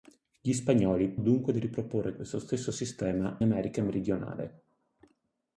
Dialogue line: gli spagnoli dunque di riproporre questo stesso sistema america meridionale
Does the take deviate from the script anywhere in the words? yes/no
no